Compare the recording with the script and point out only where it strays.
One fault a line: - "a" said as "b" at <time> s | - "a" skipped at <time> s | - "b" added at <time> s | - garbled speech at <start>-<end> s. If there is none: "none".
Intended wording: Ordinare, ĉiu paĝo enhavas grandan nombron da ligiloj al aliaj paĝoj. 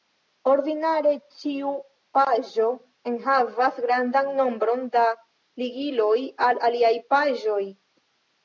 none